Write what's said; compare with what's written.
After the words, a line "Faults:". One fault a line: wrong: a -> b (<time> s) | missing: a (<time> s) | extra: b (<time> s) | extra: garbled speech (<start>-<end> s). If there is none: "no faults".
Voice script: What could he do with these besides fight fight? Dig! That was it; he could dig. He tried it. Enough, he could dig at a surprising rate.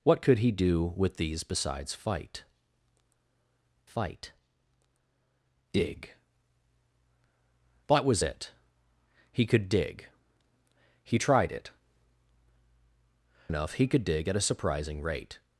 What could he do with these besides fight fight? Dig! That was it; he could dig. He tried it. Enough, he could dig at a surprising rate.
Faults:
no faults